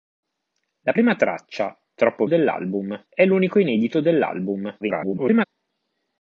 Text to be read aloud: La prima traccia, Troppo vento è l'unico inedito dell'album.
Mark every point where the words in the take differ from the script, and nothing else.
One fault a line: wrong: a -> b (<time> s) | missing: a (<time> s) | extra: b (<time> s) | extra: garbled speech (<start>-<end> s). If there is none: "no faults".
wrong: vento -> dell'album (2.2 s)
extra: garbled speech (4.8-5.4 s)